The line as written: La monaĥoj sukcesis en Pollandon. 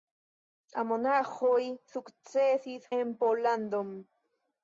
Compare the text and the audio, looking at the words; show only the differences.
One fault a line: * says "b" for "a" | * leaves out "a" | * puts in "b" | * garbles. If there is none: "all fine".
all fine